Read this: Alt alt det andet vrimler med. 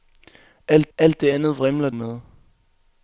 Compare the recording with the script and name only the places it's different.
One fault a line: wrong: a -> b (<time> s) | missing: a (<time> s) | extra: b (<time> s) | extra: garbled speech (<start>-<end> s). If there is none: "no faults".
no faults